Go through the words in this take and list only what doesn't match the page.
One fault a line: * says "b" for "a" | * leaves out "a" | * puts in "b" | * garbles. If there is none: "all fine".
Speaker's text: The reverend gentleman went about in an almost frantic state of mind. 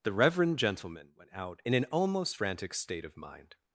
* says "out" for "about"